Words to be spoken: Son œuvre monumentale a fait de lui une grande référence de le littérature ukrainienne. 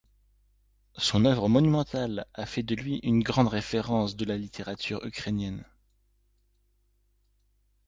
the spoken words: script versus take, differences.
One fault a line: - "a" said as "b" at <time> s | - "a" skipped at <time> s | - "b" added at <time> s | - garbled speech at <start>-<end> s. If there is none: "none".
- "le" said as "la" at 4.3 s